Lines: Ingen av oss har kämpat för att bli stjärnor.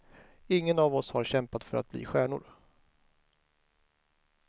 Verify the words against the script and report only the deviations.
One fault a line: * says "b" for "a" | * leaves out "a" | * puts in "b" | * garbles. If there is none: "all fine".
all fine